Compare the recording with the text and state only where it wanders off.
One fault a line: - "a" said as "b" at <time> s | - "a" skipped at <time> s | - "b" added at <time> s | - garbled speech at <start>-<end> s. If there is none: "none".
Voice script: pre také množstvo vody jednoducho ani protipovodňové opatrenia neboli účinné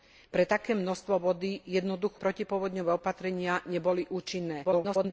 - "ani" skipped at 2.2 s
- garbled speech at 4.6-5.1 s